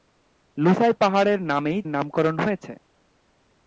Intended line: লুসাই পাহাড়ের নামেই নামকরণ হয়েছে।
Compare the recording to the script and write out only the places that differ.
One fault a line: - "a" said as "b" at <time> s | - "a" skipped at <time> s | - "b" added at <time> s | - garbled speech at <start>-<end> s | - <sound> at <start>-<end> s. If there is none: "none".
none